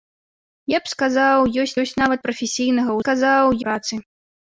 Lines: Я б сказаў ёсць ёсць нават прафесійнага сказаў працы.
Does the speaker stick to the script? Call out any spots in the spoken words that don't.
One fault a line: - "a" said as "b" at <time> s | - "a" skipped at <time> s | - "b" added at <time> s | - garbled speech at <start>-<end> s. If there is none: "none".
none